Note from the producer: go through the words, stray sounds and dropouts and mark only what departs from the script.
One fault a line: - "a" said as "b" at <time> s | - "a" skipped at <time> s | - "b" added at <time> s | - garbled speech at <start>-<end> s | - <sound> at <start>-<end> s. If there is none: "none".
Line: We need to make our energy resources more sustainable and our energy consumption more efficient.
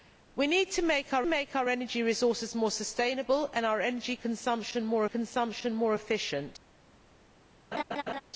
- "make our" added at 1.2 s
- "consumption more" added at 5.1 s
- laugh at 7.7-8.2 s